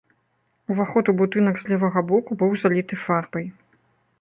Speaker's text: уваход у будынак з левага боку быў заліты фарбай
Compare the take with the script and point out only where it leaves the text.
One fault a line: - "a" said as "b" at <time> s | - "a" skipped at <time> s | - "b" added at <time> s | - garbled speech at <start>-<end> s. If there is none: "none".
none